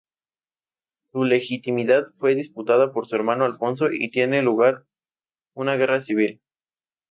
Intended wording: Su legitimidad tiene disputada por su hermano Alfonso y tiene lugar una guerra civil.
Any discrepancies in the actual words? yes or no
yes